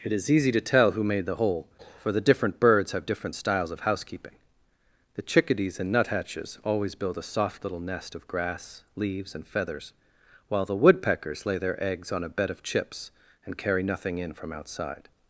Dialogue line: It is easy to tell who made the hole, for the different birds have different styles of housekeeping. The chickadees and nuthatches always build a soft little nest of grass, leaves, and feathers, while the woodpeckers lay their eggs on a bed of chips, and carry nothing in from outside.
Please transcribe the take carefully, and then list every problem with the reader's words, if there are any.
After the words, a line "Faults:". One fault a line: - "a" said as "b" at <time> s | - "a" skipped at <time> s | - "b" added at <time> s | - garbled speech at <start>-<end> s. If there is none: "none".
It is easy to tell who made the hole, for the different birds have different styles of housekeeping. The chickadees and nuthatches always build a soft little nest of grass, leaves, and feathers, while the woodpeckers lay their eggs on a bed of chips, and carry nothing in from outside.
Faults:
none